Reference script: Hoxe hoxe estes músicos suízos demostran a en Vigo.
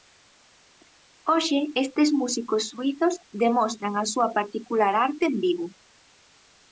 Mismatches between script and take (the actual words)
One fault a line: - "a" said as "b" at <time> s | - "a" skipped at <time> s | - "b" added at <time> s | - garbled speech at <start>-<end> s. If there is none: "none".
- "hoxe" skipped at 1.6 s
- "súa particular arte" added at 4.1 s